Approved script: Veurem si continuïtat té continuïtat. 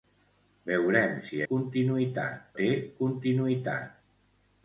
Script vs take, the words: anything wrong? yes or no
no